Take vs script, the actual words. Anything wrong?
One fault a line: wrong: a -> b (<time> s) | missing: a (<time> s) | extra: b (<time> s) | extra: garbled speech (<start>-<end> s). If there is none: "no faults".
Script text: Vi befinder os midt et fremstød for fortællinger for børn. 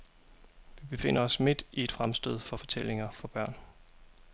extra: i (1.7 s)